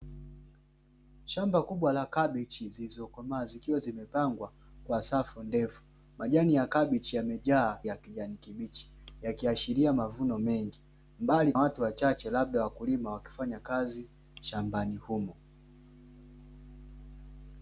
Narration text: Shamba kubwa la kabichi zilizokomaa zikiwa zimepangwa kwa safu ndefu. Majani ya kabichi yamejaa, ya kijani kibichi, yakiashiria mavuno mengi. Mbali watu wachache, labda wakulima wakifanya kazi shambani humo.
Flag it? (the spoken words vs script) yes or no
no